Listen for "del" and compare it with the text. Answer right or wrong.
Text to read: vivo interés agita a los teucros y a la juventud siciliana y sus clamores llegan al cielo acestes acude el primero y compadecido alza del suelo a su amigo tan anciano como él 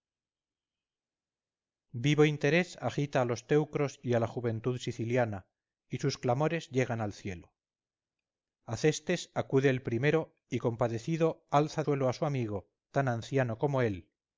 wrong